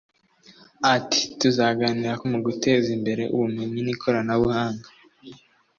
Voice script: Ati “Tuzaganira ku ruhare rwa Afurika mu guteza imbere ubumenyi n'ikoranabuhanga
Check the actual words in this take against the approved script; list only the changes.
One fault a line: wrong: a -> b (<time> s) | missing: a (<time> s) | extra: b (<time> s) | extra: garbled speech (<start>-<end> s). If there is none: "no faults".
missing: ruhare rwa Afurika (2.2 s)